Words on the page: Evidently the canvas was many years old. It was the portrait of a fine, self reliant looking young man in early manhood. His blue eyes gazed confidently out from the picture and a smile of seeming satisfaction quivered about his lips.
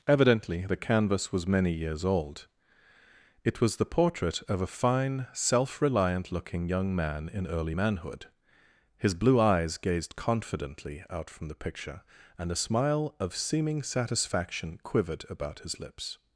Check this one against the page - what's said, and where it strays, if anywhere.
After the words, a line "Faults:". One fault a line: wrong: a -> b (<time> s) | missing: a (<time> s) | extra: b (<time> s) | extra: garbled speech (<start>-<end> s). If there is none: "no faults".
Evidently the canvas was many years old. It was the portrait of a fine, self reliant looking young man in early manhood. His blue eyes gazed confidently out from the picture and a smile of seeming satisfaction quivered about his lips.
Faults:
no faults